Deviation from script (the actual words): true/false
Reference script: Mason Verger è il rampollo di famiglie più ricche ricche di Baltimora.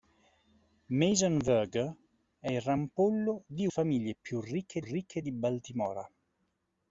false